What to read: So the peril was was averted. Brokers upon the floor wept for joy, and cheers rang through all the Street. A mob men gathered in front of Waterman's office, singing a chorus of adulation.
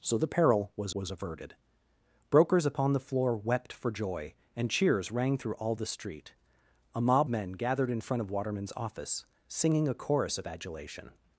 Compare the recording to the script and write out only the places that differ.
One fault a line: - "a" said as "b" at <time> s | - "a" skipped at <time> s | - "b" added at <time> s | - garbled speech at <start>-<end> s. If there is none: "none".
none